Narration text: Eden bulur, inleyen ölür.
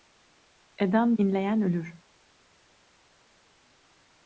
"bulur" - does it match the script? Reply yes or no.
no